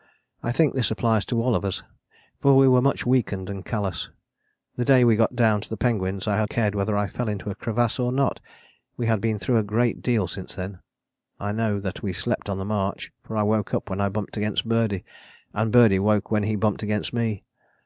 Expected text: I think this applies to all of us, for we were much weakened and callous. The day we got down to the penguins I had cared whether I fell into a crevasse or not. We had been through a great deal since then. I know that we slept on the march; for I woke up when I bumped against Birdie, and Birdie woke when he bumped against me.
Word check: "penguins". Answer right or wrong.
right